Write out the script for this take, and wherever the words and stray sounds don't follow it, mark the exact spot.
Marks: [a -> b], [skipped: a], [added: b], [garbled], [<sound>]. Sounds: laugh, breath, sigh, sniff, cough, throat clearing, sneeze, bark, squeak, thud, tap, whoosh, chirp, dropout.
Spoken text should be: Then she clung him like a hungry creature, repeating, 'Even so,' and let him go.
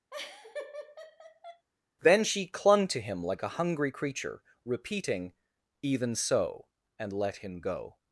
[laugh] Then she clung [added: to] him like a hungry creature, repeating, 'Even so,' and let him go.